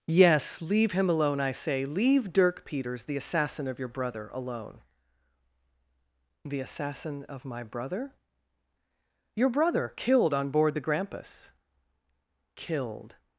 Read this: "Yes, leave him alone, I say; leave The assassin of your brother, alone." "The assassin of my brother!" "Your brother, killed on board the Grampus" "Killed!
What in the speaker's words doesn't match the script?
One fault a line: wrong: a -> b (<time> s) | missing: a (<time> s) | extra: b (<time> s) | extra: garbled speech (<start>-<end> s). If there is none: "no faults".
extra: Dirk Peters (2.3 s)